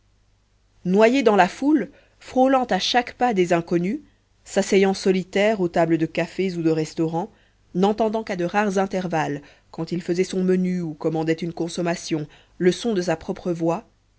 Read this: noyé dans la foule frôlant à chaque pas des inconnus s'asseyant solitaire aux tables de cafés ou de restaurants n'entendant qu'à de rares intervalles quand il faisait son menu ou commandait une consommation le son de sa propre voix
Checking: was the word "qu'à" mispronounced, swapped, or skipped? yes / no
no